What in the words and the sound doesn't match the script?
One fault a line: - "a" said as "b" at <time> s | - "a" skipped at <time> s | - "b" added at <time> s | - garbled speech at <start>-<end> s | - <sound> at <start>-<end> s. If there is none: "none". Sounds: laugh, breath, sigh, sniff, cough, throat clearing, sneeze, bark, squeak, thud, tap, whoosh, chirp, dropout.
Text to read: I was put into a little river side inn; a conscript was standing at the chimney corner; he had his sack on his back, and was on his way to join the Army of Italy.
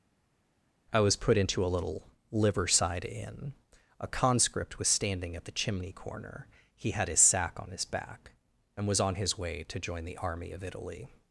- "river" said as "liver" at 2.3 s